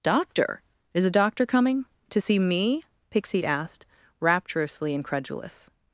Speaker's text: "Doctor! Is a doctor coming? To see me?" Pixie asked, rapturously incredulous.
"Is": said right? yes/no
yes